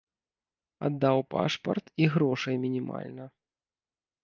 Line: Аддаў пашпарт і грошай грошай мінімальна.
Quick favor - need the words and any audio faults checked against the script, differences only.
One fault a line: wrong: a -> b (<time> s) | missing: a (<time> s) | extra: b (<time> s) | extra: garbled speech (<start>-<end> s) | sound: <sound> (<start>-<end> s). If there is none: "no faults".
missing: грошай (2.5 s)